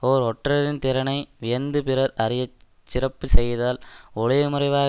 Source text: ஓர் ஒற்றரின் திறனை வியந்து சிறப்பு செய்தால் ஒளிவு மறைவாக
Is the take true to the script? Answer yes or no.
no